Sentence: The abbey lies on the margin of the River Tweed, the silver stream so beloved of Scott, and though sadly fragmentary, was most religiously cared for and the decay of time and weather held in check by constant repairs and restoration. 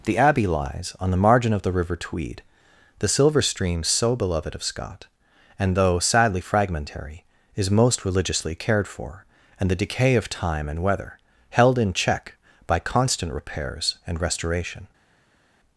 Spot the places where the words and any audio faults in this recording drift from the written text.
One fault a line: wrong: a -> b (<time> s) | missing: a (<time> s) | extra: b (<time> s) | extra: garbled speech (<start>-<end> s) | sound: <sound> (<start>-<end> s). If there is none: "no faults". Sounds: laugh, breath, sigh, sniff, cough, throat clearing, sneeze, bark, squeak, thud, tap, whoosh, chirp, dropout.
wrong: was -> is (7.5 s)